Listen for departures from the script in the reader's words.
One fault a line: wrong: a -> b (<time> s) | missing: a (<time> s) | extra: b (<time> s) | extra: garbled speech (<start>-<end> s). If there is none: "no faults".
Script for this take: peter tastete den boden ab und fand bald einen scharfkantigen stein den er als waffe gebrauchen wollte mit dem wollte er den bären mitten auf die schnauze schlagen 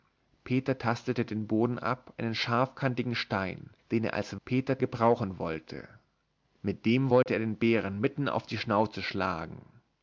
missing: und fand bald (2.1 s)
wrong: waffe -> peter (4.4 s)